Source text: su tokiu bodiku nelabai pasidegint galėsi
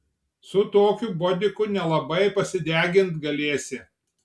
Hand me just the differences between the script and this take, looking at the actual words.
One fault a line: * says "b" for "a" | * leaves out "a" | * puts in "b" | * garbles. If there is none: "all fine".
all fine